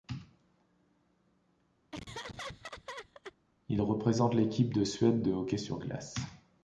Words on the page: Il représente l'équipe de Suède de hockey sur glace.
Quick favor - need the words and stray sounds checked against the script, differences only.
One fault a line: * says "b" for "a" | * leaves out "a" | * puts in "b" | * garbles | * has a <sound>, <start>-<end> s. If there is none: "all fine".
* has a laugh, 1.9-3.4 s